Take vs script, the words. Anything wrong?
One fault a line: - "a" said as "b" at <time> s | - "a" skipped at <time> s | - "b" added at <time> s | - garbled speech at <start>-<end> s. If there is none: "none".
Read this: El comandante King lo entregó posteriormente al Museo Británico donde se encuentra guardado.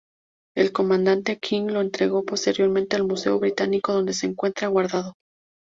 none